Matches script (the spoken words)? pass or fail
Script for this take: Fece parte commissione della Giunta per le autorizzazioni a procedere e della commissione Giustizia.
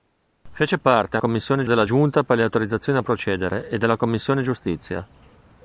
pass